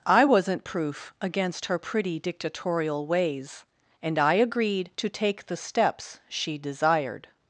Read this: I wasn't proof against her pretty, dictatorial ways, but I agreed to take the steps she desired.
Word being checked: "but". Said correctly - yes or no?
no